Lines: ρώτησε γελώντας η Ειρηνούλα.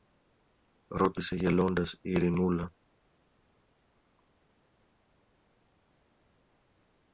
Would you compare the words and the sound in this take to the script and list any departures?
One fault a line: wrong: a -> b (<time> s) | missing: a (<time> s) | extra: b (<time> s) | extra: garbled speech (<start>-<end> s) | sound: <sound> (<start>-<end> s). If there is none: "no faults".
no faults